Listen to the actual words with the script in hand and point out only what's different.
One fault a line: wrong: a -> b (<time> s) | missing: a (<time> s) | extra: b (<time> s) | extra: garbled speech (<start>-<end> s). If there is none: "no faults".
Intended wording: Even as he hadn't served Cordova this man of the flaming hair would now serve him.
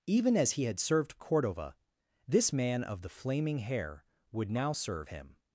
wrong: hadn't -> had (0.6 s)